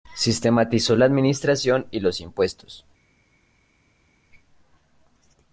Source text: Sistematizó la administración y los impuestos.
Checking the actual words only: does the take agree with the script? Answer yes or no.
yes